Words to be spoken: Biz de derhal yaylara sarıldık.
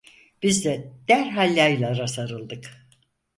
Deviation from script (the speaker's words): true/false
false